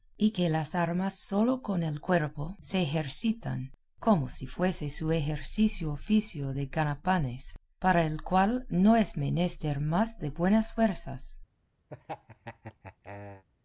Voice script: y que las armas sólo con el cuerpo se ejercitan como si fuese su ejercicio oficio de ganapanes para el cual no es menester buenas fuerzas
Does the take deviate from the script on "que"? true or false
false